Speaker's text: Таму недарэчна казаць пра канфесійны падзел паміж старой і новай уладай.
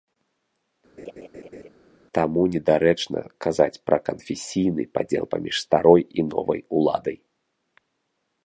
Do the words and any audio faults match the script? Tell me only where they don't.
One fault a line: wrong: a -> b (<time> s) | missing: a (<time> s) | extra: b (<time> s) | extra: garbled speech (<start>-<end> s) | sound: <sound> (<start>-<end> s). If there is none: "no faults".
sound: laugh (1.0-1.7 s)